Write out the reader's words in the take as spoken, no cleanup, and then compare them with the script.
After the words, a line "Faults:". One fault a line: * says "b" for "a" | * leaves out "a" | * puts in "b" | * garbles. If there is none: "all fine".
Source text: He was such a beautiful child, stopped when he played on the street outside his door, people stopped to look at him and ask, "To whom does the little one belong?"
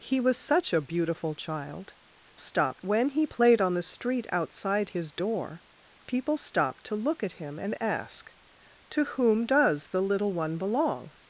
He was such a beautiful child, stopped when he played on the street outside his door, people stopped to look at him and ask, "To whom does the little one belong?"
Faults:
all fine